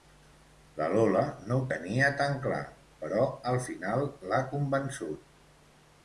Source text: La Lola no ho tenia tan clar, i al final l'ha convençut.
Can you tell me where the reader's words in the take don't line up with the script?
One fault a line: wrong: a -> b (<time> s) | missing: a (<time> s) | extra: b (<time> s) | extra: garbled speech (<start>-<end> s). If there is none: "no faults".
wrong: i -> però (3.0 s)